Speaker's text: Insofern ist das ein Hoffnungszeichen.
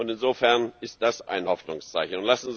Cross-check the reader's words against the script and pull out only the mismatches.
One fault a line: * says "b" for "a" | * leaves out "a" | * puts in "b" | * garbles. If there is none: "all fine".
all fine